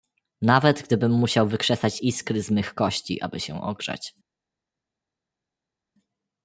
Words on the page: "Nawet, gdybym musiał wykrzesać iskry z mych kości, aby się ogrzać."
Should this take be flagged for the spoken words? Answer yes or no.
no